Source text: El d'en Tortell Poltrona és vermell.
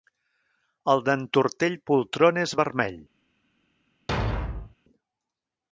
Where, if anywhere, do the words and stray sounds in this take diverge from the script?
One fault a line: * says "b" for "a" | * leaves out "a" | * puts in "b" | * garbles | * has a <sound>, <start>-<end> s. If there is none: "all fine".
* has a thud, 4.1-4.7 s